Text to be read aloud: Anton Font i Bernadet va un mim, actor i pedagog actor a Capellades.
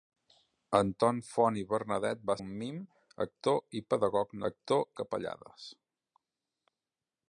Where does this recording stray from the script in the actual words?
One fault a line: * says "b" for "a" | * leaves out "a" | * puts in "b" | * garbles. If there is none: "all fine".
all fine